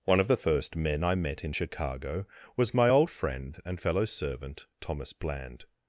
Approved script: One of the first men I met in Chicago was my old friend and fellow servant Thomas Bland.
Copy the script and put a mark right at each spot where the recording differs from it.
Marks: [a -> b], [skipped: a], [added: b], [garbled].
One of the first men I met in Chicago was my old friend and fellow servant Thomas Bland.